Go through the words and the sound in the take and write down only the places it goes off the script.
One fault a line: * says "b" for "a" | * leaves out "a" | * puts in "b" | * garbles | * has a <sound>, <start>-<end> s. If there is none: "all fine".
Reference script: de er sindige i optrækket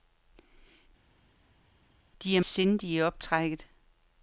all fine